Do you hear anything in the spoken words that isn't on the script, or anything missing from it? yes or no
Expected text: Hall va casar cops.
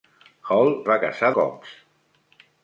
no